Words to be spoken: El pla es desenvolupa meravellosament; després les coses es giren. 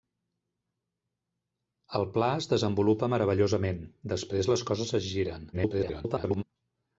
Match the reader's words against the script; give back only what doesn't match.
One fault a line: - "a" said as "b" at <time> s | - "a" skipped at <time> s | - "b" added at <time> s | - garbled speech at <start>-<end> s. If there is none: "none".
- garbled speech at 5.5-6.4 s